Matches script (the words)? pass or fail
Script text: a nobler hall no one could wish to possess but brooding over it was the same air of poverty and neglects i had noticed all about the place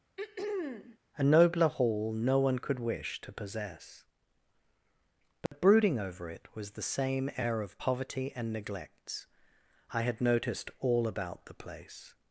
pass